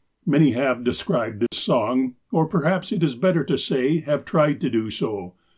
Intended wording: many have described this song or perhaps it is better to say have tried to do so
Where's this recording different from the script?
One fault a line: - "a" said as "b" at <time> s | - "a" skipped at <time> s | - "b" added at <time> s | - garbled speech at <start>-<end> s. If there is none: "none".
none